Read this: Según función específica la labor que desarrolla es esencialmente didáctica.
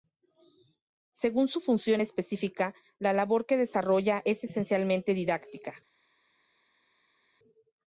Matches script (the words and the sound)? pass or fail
fail